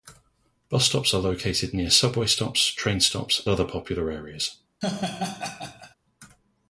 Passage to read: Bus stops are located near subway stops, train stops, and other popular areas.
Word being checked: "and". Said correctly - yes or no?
no